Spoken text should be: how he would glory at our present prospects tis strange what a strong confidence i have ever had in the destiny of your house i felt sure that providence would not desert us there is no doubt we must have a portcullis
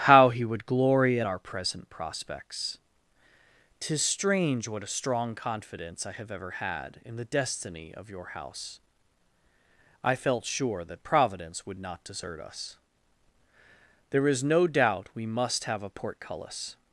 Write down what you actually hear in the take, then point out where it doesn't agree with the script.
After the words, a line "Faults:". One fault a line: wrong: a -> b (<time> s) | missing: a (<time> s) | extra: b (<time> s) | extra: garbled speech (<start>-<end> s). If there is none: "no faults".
how he would glory at our present prospects tis strange what a strong confidence i have ever had in the destiny of your house i felt sure that providence would not desert us there is no doubt we must have a portcullis
Faults:
no faults